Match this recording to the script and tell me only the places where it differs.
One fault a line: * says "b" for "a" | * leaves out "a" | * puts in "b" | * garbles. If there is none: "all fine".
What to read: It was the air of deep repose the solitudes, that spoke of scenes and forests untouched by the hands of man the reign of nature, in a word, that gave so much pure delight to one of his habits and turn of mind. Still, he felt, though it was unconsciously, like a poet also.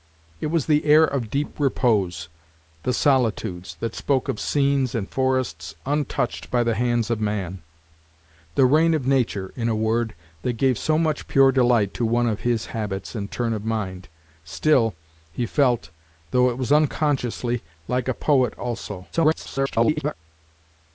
* garbles